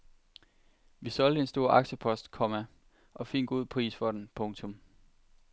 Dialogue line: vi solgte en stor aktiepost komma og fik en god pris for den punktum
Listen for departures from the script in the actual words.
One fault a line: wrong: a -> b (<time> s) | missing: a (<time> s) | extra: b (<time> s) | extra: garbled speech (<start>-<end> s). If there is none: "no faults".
no faults